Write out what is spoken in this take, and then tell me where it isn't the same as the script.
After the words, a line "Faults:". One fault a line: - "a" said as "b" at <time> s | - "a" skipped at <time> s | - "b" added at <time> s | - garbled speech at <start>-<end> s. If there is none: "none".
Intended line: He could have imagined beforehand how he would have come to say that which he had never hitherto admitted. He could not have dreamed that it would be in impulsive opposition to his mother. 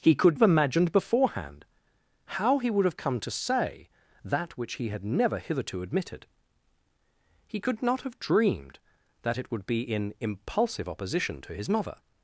He could have imagined beforehand how he would have come to say that which he had never hitherto admitted. He could not have dreamed that it would be in impulsive opposition to his mother.
Faults:
none